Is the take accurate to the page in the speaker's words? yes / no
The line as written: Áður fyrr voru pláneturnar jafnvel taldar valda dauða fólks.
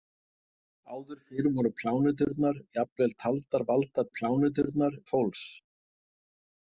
no